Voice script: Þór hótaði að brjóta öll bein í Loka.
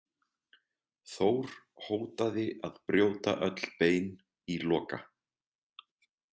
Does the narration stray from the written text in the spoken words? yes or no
no